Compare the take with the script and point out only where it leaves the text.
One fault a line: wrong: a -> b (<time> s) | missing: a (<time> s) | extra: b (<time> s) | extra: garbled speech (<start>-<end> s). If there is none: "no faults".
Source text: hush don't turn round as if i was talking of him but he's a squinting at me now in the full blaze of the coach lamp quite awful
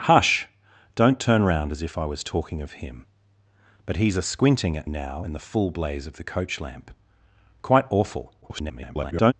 missing: me (4.9 s)
extra: garbled speech (8.4-9.3 s)